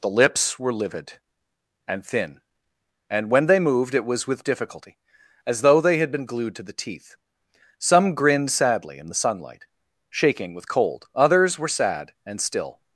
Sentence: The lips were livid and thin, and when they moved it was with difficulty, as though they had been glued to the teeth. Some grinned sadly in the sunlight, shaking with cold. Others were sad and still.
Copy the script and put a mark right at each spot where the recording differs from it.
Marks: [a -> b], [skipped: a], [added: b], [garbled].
The lips were livid and thin, and when they moved it was with difficulty, as though they had been glued to the teeth. Some grinned sadly in the sunlight, shaking with cold. Others were sad and still.